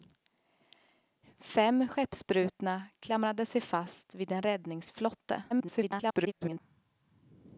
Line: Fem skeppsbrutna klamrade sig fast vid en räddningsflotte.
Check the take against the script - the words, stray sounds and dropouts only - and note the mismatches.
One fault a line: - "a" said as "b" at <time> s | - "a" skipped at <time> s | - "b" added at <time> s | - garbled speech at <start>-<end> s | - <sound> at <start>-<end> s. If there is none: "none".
- garbled speech at 5.5-6.6 s